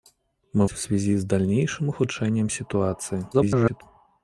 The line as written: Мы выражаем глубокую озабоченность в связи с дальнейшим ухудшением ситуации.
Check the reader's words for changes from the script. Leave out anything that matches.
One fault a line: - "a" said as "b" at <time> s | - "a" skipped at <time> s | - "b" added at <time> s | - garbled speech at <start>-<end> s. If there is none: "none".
- "выражаем глубокую озабоченность" skipped at 0.7 s
- garbled speech at 3.3-3.8 s